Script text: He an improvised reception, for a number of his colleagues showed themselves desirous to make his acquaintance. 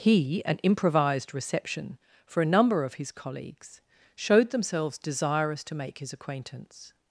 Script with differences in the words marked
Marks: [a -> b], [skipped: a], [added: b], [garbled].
He an improvised reception, for a number of his colleagues showed themselves desirous to make his acquaintance.